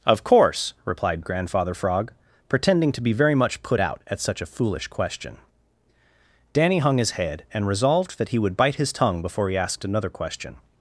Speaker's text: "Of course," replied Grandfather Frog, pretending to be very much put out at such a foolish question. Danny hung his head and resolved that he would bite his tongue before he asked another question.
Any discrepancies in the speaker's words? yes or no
no